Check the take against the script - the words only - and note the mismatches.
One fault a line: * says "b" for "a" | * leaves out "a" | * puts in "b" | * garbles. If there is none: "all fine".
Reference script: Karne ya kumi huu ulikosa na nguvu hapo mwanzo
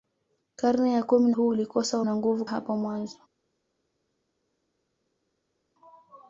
all fine